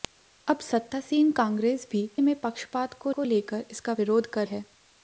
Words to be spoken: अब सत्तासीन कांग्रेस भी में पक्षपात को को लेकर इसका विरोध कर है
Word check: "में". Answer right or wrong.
right